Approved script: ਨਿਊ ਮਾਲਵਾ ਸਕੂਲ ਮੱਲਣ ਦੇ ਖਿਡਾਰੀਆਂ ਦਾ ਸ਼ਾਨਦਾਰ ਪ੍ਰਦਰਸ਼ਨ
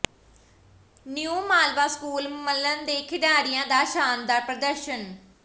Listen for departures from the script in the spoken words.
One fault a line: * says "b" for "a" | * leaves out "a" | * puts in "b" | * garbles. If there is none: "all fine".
all fine